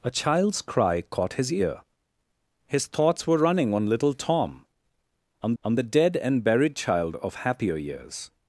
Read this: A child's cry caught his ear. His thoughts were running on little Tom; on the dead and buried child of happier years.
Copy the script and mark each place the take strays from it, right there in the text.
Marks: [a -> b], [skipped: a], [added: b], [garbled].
A child's cry caught his ear. His thoughts were running on little Tom; on [added: on] the dead and buried child of happier years.